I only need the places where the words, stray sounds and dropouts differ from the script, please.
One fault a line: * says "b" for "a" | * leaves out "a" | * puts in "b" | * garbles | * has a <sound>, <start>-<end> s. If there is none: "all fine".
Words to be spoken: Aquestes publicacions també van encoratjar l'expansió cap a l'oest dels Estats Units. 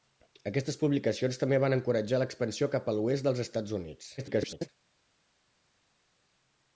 * garbles